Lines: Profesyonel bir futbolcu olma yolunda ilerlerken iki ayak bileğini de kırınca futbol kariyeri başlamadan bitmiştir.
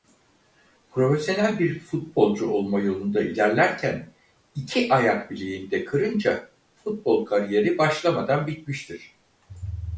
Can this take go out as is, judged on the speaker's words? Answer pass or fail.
pass